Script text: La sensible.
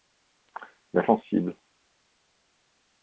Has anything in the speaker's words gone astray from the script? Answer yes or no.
no